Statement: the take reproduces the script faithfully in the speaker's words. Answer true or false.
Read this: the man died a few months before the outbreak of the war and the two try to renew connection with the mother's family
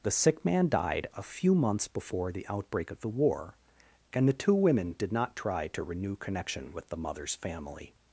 false